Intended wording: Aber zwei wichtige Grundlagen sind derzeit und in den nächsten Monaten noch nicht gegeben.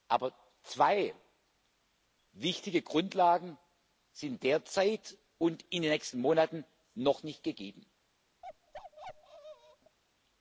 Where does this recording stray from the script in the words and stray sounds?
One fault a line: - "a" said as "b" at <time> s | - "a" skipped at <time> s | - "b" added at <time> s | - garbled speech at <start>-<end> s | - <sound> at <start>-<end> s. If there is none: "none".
- bark at 8.4-10.0 s